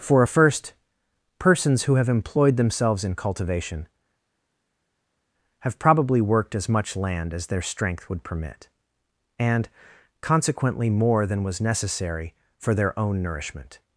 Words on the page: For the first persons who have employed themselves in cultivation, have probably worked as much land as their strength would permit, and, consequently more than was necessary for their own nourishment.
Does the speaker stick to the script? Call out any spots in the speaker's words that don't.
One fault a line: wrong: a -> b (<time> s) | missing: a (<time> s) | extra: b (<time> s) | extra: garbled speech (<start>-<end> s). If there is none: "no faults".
wrong: the -> a (0.2 s)